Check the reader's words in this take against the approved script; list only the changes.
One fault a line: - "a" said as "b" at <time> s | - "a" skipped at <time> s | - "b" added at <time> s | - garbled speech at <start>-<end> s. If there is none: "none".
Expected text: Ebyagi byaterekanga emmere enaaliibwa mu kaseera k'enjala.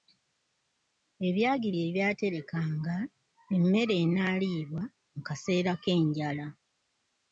- "bye" added at 1.7 s